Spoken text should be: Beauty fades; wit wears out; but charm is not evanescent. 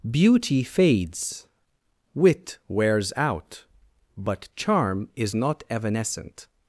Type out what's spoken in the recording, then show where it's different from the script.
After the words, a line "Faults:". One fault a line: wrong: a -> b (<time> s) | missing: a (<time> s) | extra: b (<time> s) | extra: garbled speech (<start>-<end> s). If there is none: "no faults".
Beauty fades; wit wears out; but charm is not evanescent.
Faults:
no faults